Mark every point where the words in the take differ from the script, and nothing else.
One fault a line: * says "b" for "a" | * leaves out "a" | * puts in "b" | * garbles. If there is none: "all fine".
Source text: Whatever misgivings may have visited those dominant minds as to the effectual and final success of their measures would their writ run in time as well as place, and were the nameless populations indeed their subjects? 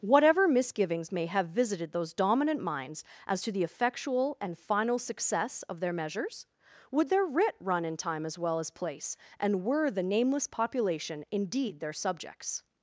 * says "population" for "populations"